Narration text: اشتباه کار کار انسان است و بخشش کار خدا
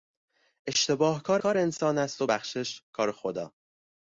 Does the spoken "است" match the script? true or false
true